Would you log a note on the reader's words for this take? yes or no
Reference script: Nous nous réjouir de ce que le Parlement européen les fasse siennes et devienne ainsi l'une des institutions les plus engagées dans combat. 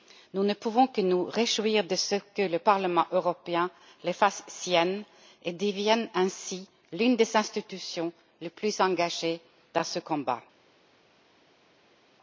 yes